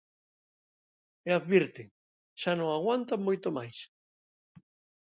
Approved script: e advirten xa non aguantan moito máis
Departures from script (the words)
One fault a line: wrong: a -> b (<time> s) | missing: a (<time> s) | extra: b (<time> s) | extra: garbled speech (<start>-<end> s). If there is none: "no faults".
no faults